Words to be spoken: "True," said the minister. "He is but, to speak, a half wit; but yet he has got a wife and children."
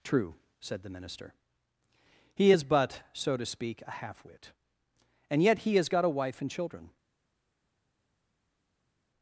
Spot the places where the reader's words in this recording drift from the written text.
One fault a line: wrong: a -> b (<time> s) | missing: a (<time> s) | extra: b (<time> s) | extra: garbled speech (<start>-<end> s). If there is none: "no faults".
extra: so (3.1 s)
wrong: but -> and (5.3 s)